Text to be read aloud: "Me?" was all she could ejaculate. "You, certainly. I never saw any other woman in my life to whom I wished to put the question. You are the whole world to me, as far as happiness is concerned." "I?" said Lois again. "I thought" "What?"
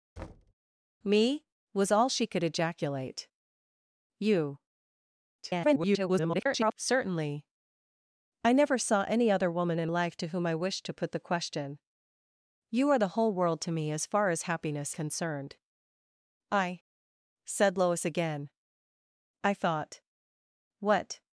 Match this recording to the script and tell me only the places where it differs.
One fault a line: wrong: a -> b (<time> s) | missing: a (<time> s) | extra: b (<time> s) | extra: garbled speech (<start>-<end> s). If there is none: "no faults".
extra: garbled speech (5.4-6.7 s)
missing: my (9.9 s)
missing: is (14.9 s)